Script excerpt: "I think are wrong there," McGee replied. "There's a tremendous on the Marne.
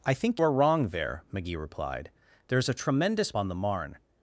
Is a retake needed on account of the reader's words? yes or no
no